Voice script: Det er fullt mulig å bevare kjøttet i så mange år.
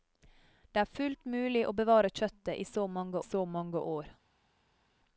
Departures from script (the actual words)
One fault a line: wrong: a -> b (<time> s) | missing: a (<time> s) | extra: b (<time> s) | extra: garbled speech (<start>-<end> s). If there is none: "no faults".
extra: så mange (3.2 s)